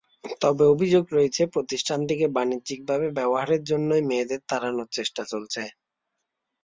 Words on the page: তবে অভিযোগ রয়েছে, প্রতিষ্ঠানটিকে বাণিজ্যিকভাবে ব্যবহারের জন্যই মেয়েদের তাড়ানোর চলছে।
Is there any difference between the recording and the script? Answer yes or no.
yes